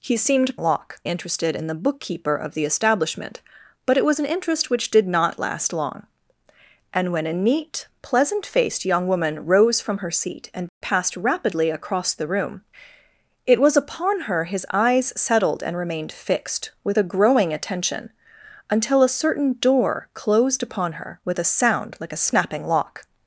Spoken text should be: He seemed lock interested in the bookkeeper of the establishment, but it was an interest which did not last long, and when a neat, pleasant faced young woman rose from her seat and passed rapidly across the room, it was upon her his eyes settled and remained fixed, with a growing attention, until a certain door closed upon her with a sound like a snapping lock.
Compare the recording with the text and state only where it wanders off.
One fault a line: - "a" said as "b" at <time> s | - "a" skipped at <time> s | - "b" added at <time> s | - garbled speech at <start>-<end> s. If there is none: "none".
none